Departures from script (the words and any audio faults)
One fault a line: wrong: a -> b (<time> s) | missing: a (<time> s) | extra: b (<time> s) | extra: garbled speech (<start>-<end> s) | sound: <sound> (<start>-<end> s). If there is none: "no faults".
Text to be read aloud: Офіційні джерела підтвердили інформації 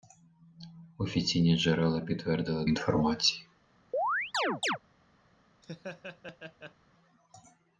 sound: chirp (3.9-4.8 s)
sound: laugh (5.6-6.8 s)